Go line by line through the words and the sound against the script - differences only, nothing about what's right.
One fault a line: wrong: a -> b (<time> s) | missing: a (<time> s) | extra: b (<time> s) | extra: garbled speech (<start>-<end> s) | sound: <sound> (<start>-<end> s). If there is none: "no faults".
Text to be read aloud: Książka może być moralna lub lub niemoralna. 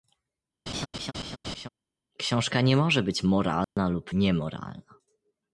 sound: laugh (0.7-1.7 s)
extra: nie (2.6 s)
sound: dropout (3.6-3.8 s)
missing: lub (4.1 s)